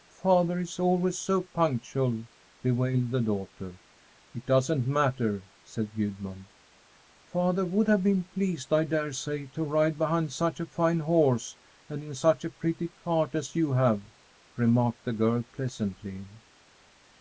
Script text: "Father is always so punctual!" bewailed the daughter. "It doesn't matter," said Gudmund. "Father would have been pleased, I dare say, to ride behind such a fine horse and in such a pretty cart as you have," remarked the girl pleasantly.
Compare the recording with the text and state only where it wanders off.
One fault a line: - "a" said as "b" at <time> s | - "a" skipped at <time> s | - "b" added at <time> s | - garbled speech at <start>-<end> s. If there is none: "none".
none